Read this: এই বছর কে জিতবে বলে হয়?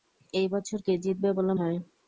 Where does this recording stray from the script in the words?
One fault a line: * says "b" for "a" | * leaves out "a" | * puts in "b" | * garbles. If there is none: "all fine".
all fine